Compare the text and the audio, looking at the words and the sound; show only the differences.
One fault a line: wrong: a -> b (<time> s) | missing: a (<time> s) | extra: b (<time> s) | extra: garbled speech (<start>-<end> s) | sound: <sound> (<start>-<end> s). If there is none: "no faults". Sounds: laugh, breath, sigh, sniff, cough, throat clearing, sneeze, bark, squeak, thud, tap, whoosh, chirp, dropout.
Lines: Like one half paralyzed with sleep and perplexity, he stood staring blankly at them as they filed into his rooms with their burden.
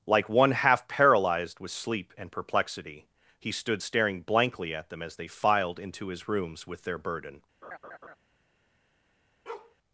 sound: laugh (7.6-8.2 s)
sound: bark (9.5-9.8 s)